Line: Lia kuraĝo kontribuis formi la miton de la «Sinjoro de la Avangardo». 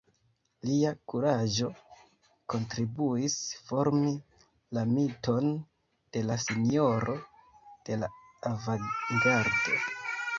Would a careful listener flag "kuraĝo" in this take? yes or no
no